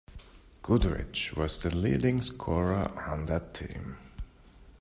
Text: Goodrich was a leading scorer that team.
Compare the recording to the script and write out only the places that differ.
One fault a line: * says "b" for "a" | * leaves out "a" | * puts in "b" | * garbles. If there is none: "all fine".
* says "the" for "a"
* puts in "on"